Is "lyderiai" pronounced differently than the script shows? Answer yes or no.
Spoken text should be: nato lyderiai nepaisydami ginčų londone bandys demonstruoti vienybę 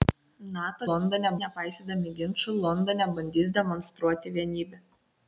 yes